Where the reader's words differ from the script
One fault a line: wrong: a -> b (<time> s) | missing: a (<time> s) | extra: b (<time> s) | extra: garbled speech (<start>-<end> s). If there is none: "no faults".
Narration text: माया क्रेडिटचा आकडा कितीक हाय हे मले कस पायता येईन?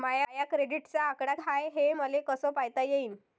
missing: कितीक (1.4 s)